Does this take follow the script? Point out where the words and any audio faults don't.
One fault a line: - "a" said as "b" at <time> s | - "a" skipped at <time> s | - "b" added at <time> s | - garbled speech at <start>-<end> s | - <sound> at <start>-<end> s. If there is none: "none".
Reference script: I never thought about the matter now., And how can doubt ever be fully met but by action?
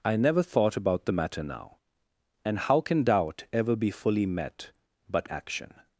- "by" skipped at 5.3 s